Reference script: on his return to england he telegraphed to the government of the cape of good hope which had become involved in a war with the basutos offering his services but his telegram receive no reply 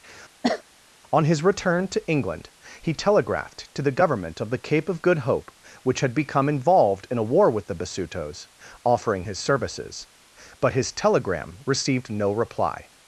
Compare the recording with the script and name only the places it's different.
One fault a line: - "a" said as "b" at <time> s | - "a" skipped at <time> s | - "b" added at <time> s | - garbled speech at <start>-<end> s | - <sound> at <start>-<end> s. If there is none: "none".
- cough at 0.4-0.6 s
- "receive" said as "received" at 11.7 s